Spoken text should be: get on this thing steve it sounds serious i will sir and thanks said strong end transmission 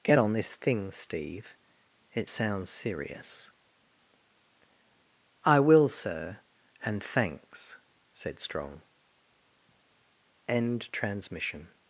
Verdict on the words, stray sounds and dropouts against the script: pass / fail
pass